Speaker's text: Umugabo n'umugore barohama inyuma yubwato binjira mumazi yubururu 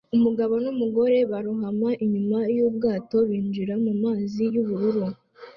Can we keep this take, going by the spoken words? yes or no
yes